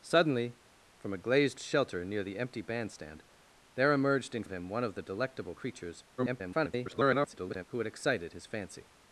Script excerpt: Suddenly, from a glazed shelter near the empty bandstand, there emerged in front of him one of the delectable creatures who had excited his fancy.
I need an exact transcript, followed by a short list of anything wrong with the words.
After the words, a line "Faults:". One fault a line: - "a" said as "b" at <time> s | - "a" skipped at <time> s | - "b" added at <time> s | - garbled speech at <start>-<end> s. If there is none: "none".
Suddenly, from a glazed shelter near the empty bandstand, there emerged in of him one of the delectable creatures [garbled] who had excited his fancy.
Faults:
- "front" skipped at 4.4 s
- garbled speech at 6.2-7.6 s